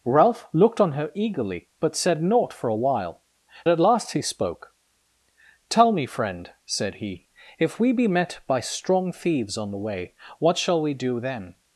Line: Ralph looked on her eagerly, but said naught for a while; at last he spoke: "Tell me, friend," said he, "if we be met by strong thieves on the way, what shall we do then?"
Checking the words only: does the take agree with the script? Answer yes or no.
yes